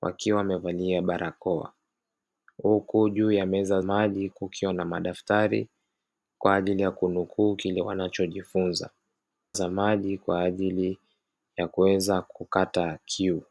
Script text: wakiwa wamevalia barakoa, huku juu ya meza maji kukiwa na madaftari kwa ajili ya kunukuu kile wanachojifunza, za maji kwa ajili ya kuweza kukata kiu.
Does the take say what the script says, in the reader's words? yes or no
yes